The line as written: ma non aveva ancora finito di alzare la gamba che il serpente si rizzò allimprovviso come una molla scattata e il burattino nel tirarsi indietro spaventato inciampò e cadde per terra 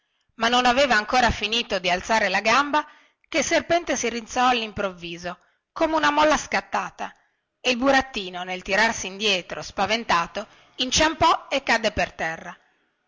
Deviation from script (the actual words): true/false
false